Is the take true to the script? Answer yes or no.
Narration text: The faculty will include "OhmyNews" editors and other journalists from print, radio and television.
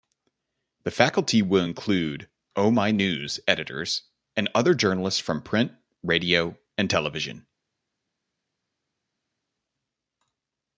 yes